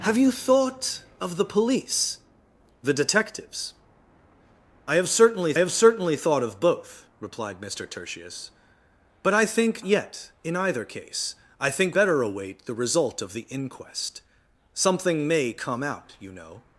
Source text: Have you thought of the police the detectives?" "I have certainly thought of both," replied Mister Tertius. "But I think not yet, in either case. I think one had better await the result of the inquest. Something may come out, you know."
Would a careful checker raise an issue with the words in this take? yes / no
yes